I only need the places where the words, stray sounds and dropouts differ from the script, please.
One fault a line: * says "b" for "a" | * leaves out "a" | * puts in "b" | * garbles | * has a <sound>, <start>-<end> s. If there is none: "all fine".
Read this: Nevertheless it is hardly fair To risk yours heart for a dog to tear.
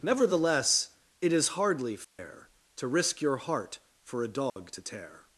* has a dropout, 2.0-2.2 s
* says "your" for "yours"
* has a dropout, 4.5-4.6 s